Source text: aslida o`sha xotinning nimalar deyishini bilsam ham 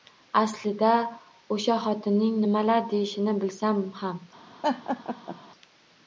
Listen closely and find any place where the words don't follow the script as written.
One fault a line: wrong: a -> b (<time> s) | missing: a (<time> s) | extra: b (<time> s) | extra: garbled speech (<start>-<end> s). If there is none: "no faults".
no faults